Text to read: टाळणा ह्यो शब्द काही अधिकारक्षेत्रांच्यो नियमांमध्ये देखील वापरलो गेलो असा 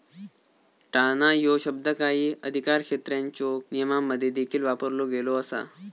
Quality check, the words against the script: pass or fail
pass